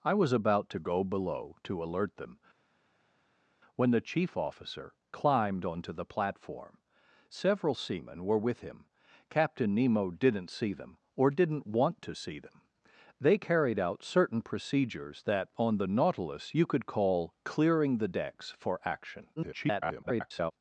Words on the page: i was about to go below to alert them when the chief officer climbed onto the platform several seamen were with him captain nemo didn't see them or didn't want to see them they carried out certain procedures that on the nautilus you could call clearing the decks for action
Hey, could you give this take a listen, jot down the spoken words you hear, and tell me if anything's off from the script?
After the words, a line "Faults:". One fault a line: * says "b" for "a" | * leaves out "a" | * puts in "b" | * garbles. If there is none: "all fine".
i was about to go below to alert them when the chief officer climbed onto the platform several seamen were with him captain nemo didn't see them or didn't want to see them they carried out certain procedures that on the nautilus you could call clearing the decks for action [garbled]
Faults:
* garbles